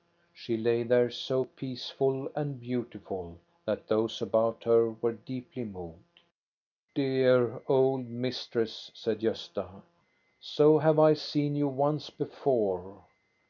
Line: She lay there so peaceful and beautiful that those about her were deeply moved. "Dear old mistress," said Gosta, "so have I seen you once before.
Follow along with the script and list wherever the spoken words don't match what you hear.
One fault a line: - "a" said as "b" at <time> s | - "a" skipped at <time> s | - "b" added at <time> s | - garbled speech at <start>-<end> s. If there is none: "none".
none